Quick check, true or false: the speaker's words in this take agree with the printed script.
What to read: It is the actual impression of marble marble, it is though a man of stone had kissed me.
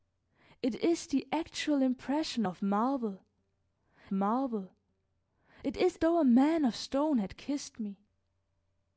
true